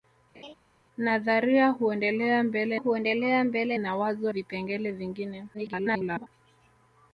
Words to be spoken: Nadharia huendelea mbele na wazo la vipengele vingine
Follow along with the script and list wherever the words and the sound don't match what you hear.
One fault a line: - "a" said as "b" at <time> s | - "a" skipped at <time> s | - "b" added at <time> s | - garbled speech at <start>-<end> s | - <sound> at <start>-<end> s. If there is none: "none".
- laugh at 0.3-0.5 s
- "huendelea mbele" added at 2.7 s
- "la" skipped at 4.3 s
- garbled speech at 5.5-6.3 s